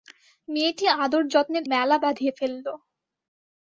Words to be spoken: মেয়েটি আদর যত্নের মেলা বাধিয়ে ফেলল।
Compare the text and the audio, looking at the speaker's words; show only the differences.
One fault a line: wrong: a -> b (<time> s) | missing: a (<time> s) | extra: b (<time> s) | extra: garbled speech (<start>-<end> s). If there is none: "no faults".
no faults